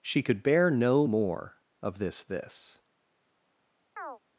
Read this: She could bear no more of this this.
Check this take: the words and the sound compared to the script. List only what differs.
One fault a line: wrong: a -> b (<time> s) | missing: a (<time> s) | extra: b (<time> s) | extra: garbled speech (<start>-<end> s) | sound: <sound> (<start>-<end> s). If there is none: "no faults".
sound: chirp (4.0-4.2 s)